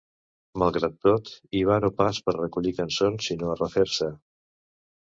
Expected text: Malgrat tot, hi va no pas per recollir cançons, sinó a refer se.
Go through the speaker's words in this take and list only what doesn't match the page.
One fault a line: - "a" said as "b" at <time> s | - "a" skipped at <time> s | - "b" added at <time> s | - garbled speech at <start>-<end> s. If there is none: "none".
none